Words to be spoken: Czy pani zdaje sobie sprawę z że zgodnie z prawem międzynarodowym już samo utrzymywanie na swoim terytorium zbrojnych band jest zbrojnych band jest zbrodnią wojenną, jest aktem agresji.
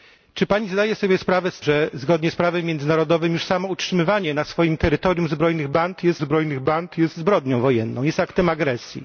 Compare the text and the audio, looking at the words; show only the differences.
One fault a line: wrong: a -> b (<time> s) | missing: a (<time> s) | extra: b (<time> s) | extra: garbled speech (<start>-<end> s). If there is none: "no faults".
no faults